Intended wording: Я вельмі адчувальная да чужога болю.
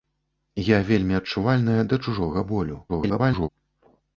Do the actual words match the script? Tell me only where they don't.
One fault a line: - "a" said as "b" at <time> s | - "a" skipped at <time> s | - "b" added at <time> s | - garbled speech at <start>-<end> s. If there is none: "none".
- garbled speech at 2.9-3.5 s